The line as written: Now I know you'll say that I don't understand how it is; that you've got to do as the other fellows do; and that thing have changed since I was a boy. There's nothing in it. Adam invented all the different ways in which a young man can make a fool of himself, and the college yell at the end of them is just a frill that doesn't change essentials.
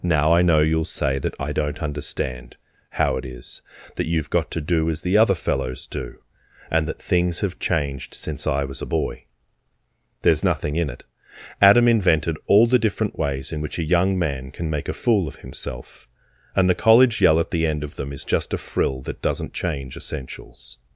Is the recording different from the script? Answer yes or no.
yes